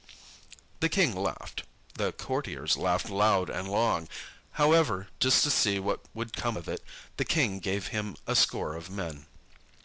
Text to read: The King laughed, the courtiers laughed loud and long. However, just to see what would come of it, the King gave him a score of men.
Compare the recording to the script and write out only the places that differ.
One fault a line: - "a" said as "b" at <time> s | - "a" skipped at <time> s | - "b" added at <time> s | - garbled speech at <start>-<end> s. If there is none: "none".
none